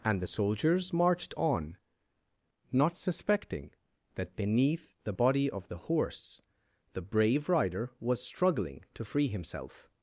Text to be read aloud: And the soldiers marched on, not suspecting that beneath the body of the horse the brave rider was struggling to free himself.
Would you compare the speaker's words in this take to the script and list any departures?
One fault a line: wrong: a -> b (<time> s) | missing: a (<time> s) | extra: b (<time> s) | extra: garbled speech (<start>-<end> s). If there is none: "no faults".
no faults